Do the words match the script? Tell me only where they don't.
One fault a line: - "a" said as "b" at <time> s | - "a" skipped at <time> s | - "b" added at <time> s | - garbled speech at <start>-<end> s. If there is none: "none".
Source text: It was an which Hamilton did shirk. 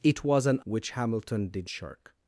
none